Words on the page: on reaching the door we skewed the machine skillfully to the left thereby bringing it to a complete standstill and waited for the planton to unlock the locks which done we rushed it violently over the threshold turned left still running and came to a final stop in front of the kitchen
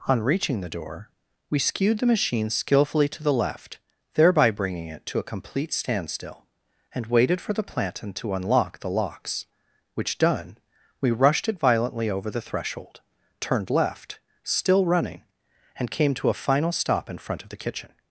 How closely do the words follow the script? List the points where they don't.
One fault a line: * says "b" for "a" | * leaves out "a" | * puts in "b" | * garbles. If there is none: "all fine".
all fine